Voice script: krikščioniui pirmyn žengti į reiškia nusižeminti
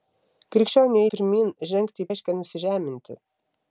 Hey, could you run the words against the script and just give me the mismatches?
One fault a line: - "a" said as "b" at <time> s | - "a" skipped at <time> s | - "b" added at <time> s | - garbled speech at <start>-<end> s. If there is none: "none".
none